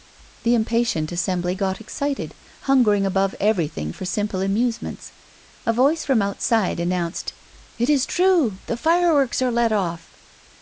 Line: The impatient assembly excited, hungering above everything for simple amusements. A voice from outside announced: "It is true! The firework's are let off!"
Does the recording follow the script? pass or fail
fail